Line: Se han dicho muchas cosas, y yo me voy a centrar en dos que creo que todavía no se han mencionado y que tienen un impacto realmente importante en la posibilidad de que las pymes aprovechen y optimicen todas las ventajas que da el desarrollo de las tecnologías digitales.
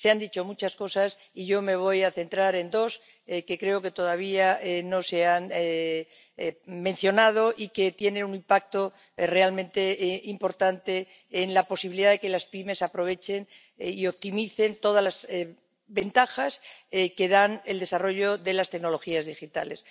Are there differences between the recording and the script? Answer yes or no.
no